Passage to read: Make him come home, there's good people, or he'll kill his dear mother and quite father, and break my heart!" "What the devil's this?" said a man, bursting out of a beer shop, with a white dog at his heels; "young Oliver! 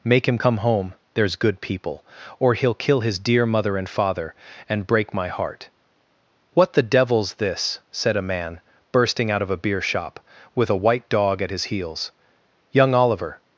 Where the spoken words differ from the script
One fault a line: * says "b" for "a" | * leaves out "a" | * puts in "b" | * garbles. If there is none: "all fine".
* leaves out "quite"